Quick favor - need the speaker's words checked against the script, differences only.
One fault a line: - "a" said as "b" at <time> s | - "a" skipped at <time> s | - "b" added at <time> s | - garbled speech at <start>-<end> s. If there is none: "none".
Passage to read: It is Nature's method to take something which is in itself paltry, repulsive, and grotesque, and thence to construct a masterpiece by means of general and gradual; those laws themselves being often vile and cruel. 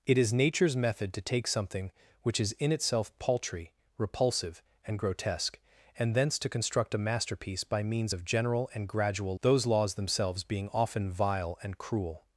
none